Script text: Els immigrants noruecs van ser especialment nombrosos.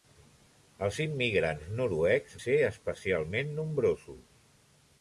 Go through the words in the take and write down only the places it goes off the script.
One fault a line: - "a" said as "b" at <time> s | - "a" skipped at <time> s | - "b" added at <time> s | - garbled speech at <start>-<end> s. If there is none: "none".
- "van" skipped at 2.4 s